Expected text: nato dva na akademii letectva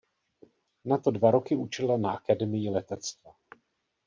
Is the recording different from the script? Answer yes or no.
yes